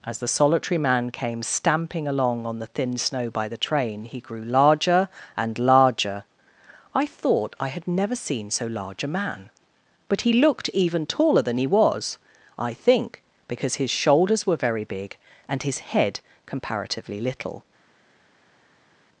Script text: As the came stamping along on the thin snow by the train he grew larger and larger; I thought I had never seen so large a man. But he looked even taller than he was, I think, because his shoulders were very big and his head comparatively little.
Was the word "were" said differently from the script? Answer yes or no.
no